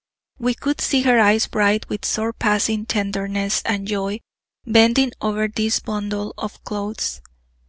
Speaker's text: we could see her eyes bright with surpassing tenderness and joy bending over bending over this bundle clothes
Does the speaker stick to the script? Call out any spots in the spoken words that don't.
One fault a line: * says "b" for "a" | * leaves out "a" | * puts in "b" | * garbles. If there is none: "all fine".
* leaves out "bending over"
* puts in "of"